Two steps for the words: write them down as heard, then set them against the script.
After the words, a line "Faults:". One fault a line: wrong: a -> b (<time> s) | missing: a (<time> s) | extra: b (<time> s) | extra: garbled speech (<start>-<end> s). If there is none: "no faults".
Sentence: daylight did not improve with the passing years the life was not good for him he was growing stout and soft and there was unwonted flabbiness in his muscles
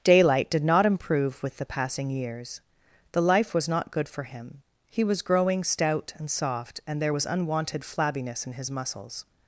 daylight did not improve with the passing years the life was not good for him he was growing stout and soft and there was unwonted flabbiness in his muscles
Faults:
no faults